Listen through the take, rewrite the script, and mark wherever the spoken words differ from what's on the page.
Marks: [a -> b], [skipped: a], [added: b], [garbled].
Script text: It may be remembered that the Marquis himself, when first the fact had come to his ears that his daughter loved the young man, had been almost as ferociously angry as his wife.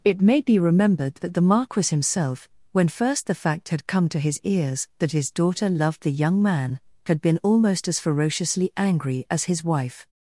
It may be remembered that the Marquis himself, when first the fact had come to his ears that his daughter loved the young man, had been almost as ferociously angry as his wife.